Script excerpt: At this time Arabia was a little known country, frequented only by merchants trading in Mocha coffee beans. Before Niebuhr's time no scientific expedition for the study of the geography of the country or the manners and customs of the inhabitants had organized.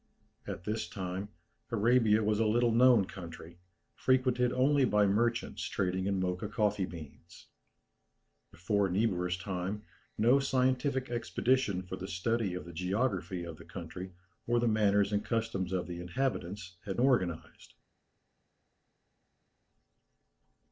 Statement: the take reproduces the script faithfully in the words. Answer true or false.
true